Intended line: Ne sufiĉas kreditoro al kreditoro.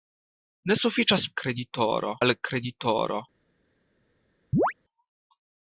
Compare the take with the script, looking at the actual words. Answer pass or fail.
pass